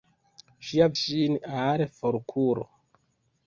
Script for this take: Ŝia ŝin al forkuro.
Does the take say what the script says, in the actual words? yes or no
yes